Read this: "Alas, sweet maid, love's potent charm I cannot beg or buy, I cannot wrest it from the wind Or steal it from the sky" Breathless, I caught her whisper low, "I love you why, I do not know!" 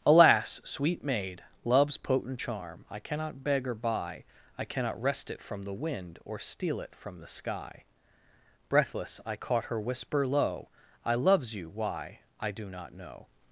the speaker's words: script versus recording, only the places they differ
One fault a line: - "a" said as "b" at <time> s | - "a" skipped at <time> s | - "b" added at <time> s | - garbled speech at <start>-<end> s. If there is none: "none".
- "love" said as "loves" at 11.2 s